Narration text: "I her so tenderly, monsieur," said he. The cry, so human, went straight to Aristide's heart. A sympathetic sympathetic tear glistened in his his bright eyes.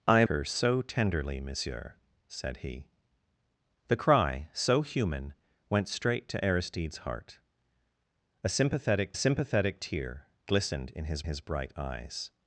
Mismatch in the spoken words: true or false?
false